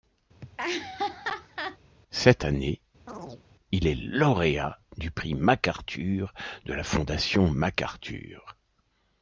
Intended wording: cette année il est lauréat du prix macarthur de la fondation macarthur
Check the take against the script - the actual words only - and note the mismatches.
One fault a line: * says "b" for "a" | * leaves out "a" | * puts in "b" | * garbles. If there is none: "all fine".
all fine